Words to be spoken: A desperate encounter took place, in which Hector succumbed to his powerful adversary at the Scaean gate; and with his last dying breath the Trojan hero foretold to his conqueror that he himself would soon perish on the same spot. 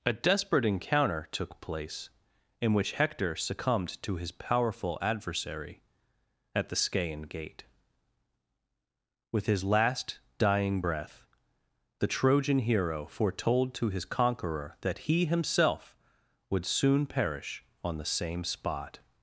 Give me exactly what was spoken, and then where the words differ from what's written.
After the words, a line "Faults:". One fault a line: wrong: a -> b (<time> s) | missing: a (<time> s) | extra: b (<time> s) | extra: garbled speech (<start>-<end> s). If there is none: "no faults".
A desperate encounter took place, in which Hector succumbed to his powerful adversary at the Scaean gate; with his last dying breath the Trojan hero foretold to his conqueror that he himself would soon perish on the same spot.
Faults:
missing: and (7.7 s)